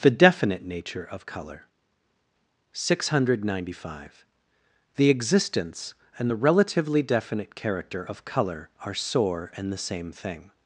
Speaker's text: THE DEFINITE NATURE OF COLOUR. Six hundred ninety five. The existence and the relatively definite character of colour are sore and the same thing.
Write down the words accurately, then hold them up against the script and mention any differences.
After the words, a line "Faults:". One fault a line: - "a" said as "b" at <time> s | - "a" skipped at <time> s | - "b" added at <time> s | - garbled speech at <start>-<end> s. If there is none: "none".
THE DEFINITE NATURE OF COLOUR. Six hundred ninety five. The existence and the relatively definite character of colour are sore and the same thing.
Faults:
none